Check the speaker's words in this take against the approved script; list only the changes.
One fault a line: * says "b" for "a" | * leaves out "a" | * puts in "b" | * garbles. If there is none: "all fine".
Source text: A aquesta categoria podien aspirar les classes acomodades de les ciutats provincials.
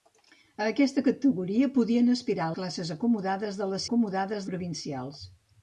* leaves out "les"
* says "acomodades" for "ciutats"